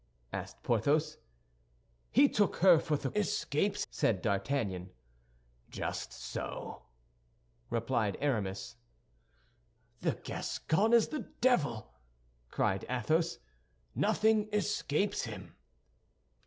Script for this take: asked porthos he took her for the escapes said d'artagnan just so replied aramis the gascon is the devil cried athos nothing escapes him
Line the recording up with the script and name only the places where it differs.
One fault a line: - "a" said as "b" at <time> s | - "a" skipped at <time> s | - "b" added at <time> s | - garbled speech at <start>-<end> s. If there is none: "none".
none